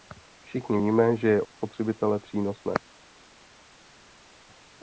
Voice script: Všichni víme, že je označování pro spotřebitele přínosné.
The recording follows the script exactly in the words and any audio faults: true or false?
false